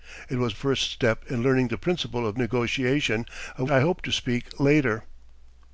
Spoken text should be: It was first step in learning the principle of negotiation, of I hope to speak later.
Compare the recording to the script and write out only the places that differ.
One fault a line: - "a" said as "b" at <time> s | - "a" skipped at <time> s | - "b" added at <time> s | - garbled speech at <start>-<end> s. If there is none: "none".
none